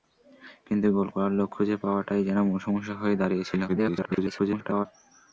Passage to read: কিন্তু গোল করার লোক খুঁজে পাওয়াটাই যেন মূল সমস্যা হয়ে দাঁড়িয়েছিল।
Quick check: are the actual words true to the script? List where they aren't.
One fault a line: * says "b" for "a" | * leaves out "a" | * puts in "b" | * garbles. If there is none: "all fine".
* garbles